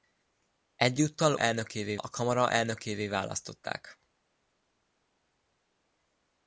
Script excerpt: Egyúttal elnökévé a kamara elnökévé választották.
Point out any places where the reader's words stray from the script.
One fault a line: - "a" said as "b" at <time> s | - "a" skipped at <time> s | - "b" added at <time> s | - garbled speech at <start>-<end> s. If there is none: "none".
none